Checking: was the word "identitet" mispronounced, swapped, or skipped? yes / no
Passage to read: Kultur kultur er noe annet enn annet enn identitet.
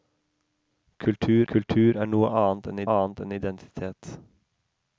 no